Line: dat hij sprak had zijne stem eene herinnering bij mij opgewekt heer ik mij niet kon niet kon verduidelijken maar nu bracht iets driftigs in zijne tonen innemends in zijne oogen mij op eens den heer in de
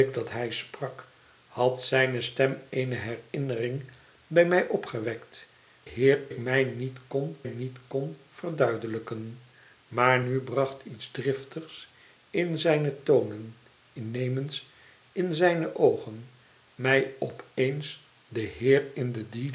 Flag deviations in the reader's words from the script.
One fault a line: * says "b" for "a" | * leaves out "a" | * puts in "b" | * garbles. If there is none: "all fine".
all fine